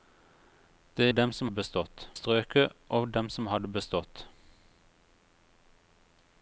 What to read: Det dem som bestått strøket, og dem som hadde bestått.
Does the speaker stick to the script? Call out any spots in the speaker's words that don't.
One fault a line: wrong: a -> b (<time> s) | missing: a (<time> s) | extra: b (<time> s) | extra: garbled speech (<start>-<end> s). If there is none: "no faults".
no faults